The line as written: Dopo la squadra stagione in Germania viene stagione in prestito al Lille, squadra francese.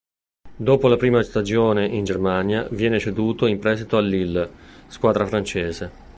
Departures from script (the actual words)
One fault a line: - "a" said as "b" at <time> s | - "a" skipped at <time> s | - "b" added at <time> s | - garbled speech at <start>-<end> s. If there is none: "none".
- "squadra" said as "prima" at 0.9 s
- "stagione" said as "ceduto" at 3.0 s